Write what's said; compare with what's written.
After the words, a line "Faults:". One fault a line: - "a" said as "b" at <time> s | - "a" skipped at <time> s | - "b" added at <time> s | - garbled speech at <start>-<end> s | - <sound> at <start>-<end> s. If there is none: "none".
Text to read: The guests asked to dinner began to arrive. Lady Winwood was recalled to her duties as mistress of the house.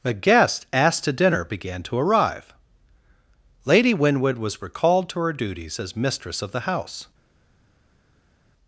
The guests asked to dinner began to arrive. Lady Winwood was recalled to her duties as mistress of the house.
Faults:
none